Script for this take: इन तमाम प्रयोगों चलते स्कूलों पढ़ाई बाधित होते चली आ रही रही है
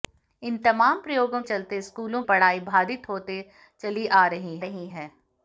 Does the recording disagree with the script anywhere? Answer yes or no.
no